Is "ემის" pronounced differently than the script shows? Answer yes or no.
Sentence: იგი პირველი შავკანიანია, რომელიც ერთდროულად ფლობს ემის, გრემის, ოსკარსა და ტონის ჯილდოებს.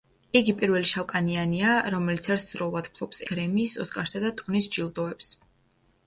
yes